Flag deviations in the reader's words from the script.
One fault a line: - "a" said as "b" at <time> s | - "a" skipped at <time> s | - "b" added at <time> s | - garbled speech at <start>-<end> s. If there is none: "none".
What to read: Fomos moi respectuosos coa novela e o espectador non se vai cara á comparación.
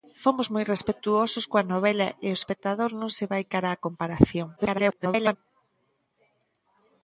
- garbled speech at 4.6-5.4 s